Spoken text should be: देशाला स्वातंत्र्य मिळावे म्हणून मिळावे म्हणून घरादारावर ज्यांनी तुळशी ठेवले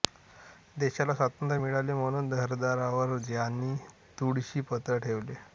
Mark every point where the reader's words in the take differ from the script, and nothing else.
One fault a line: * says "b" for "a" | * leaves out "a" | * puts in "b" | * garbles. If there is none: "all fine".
* leaves out "मिळावे म्हणून"
* puts in "पत्र"